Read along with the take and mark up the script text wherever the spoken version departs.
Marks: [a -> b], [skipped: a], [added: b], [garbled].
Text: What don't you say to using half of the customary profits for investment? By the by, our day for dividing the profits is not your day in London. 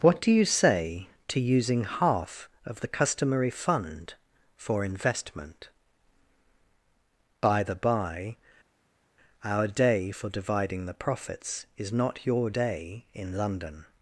What [don't -> do] you say to using half of the customary [profits -> fund] for investment? By the by, our day for dividing the profits is not your day in London.